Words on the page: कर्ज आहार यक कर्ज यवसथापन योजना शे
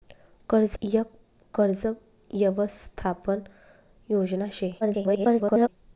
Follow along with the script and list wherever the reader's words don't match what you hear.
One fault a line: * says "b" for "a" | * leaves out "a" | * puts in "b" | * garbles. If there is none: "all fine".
* leaves out "आहार"
* garbles